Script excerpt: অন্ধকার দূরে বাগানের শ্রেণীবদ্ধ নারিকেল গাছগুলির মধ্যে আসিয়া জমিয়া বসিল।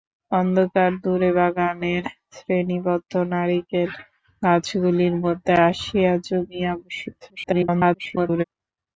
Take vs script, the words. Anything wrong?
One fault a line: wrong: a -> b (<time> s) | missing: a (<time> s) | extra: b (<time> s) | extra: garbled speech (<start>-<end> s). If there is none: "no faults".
extra: garbled speech (7.2-8.4 s)